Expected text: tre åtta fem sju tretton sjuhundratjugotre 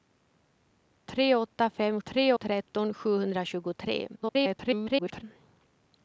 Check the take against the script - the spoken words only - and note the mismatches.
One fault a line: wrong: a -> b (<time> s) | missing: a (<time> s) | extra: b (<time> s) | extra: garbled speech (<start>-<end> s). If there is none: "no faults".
wrong: sju -> tre (2.0 s)
extra: garbled speech (4.2-5.2 s)